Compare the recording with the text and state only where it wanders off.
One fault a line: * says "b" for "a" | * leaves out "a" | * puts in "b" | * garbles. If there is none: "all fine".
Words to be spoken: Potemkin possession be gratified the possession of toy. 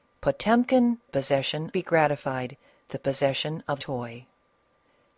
all fine